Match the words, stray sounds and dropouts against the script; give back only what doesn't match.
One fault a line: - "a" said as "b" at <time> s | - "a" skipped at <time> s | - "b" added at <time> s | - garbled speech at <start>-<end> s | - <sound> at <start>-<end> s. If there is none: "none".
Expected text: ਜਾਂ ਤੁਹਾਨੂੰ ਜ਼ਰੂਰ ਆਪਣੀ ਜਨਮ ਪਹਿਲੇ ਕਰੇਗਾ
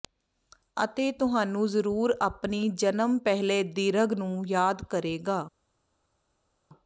- "ਜਾਂ" said as "ਅਤੇ" at 0.8 s
- "ਦੀਰਘ ਨੂੰ ਯਾਦ" added at 3.6 s